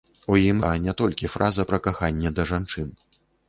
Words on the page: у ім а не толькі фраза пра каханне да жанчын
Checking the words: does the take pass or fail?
pass